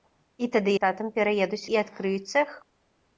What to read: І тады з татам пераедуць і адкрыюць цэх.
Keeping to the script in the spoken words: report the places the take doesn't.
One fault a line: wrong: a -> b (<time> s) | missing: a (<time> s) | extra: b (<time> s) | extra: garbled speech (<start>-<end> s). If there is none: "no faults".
no faults